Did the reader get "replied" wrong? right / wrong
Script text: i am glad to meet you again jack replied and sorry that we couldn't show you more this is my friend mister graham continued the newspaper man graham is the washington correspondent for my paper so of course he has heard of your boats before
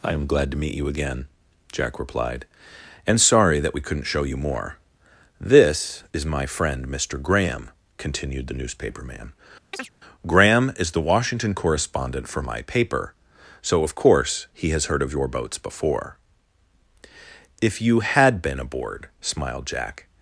right